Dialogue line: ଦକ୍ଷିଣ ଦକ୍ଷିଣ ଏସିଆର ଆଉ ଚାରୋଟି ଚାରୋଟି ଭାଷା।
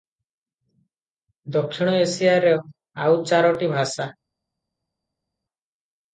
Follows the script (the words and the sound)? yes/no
no